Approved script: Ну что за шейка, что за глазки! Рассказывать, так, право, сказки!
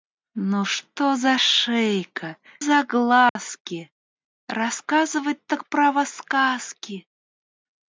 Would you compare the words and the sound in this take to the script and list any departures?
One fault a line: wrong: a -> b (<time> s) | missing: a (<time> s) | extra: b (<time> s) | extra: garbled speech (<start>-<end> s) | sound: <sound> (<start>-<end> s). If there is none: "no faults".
missing: что (2.4 s)
sound: dropout (3.3-3.4 s)